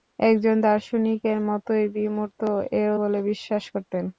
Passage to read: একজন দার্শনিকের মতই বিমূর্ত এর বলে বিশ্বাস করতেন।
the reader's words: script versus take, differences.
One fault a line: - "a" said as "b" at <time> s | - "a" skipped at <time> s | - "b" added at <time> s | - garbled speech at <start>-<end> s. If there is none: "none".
none